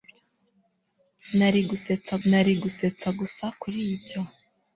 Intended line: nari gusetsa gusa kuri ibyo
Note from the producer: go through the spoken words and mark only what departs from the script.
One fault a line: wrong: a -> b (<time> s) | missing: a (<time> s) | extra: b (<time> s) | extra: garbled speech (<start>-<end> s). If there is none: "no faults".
extra: nari gusetsa (2.3 s)